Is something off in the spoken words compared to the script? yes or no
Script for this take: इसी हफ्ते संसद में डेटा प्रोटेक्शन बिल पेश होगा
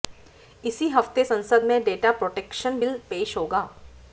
no